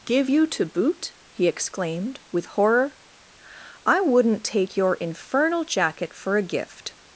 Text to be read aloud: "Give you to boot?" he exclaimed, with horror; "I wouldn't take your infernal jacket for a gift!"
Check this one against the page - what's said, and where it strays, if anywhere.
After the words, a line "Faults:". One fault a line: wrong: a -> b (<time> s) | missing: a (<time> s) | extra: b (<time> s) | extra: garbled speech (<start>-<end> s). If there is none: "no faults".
"Give you to boot?" he exclaimed, with horror; "I wouldn't take your infernal jacket for a gift!"
Faults:
no faults